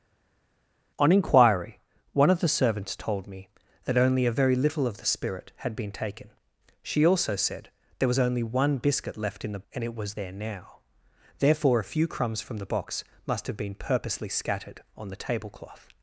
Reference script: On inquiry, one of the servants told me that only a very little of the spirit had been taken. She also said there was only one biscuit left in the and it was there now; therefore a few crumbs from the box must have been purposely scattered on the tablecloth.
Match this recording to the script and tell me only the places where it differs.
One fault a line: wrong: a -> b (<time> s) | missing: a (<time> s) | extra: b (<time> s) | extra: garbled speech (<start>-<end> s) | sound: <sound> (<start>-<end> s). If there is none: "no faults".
no faults